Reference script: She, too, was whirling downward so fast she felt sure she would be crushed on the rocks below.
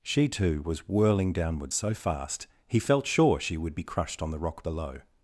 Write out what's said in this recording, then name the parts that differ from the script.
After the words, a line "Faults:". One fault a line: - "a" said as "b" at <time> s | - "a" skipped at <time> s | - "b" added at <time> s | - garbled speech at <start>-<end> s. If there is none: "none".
She, too, was whirling downward so fast he felt sure she would be crushed on the rock below.
Faults:
- "she" said as "he" at 2.7 s
- "rocks" said as "rock" at 4.4 s